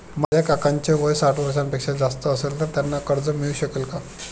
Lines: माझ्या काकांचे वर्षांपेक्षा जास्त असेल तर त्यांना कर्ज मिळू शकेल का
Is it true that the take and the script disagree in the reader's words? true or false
true